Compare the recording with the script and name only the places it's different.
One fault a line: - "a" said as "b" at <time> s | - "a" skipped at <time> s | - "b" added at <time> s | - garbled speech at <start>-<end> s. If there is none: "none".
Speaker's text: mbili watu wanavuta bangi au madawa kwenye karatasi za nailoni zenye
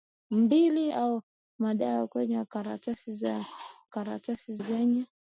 - "watu wanavuta bangi" skipped at 0.9 s
- "nailoni" said as "karatasi" at 3.8 s